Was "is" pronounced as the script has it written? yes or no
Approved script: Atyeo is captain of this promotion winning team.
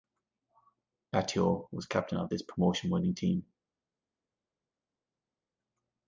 no